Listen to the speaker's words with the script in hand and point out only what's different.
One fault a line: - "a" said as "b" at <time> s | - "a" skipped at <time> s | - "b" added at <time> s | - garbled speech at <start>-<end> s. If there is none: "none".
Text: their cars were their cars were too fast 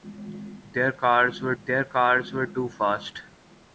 none